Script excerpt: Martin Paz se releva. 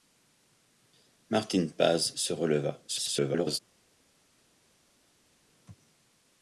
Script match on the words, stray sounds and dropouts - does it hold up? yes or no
no